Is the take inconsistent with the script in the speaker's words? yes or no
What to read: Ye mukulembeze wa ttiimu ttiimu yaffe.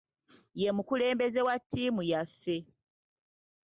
yes